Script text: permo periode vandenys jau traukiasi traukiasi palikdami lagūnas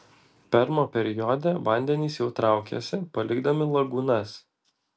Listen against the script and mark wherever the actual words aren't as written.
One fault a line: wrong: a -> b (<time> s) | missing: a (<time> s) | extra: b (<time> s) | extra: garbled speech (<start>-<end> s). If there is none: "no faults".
missing: traukiasi (3.0 s)